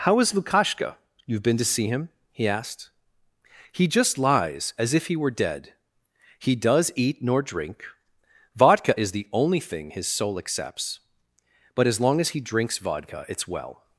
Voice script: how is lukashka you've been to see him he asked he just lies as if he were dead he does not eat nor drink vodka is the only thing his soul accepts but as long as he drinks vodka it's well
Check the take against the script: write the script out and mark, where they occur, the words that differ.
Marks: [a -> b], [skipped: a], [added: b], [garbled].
how is lukashka you've been to see him he asked he just lies as if he were dead he does [skipped: not] eat nor drink vodka is the only thing his soul accepts but as long as he drinks vodka it's well